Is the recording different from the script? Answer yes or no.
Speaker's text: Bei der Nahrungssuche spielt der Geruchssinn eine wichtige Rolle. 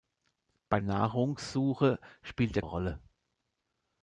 yes